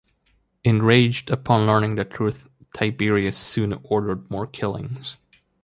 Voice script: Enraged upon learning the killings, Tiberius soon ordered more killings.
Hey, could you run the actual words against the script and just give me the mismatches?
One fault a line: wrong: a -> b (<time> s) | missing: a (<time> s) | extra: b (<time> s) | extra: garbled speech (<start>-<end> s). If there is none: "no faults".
wrong: killings -> truth (2.0 s)